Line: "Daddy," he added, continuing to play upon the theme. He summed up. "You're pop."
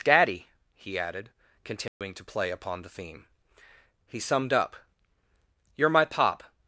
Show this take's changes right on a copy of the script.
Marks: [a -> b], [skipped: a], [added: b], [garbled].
"Daddy," he added, continuing to play upon the theme. He summed up. "You're [added: my] pop."